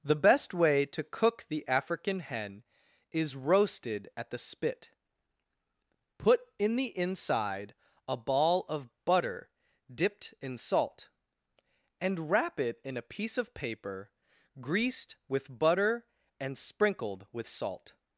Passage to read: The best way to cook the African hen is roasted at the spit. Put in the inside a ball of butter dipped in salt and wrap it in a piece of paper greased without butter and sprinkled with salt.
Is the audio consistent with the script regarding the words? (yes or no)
no